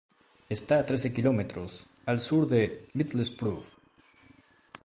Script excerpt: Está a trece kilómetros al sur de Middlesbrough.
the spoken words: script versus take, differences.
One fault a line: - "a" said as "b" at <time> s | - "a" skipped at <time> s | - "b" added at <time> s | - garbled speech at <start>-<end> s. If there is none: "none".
none